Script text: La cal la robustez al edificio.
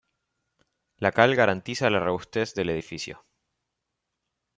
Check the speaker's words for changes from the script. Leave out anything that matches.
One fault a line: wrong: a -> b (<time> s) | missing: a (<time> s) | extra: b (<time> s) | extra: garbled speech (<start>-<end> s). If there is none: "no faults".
extra: garantiza (1.4 s)
wrong: al -> del (2.5 s)